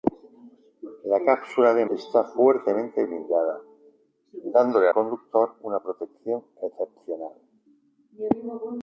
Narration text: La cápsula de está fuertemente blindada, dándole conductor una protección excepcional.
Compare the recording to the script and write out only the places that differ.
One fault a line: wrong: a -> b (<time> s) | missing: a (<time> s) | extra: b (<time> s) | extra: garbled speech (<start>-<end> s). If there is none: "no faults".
no faults